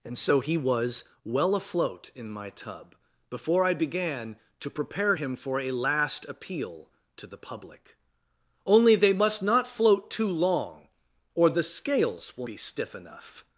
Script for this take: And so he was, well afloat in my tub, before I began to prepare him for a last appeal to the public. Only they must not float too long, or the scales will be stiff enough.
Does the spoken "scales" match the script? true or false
true